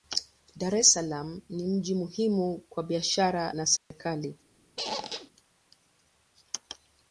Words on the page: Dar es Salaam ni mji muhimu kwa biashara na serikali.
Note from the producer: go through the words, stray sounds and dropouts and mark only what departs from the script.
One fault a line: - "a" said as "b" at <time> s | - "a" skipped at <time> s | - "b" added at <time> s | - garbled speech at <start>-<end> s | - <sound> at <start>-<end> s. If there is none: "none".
- dropout at 3.8-3.9 s
- squeak at 4.8-5.3 s